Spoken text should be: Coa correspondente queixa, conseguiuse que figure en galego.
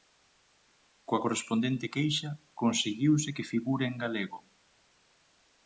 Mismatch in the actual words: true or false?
false